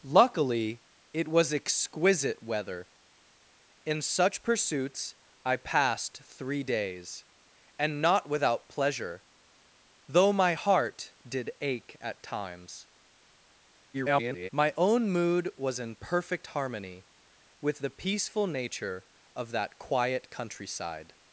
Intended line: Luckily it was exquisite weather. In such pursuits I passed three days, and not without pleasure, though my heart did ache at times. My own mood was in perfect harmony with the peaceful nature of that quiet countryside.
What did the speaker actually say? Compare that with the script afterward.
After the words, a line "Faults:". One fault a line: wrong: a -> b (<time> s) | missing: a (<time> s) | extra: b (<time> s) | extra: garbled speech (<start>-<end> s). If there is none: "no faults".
Luckily it was exquisite weather. In such pursuits I passed three days, and not without pleasure, though my heart did ache at times. [garbled] My own mood was in perfect harmony with the peaceful nature of that quiet countryside.
Faults:
extra: garbled speech (13.9-14.5 s)